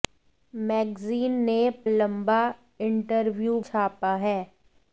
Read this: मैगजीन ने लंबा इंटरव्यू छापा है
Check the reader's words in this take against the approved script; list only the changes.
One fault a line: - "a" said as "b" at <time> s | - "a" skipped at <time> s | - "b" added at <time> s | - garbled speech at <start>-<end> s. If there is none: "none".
none